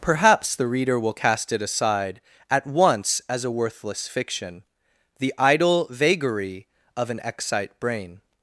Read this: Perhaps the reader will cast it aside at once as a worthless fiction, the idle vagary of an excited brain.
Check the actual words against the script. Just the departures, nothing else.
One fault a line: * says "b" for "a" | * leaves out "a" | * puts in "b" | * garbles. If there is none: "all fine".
* says "excite" for "excited"